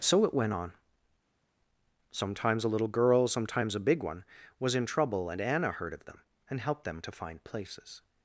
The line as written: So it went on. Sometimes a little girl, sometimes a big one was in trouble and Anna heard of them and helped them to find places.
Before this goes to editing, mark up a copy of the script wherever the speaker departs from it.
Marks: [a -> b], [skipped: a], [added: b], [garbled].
So it went on. Sometimes a little girl, sometimes a big one was in trouble and Anna heard of them and helped them to find places.